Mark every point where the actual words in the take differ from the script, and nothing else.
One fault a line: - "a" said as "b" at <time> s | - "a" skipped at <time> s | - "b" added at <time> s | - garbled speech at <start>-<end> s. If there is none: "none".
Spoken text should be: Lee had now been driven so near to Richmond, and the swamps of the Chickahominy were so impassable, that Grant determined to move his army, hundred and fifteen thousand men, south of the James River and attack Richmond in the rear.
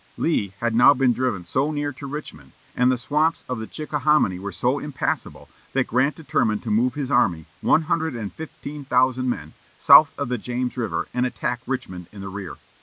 - "one" added at 7.6 s